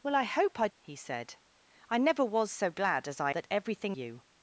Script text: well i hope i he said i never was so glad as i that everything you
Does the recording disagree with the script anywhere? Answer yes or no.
no